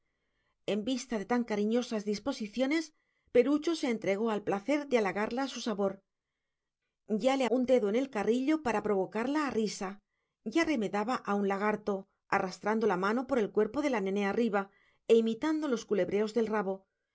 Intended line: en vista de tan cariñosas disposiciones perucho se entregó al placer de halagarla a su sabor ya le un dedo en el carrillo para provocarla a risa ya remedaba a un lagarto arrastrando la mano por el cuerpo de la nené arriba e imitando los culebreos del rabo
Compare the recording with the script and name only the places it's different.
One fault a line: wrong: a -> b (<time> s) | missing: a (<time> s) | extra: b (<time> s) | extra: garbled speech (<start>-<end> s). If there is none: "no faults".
no faults